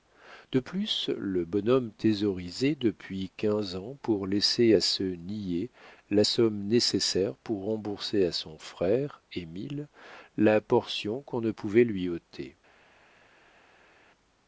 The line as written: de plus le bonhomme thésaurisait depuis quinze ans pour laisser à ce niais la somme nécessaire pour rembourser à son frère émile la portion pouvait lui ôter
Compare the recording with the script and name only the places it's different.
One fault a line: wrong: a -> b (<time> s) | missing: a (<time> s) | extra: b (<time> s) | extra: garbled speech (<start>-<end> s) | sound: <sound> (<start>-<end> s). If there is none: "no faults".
extra: qu'on ne (11.2 s)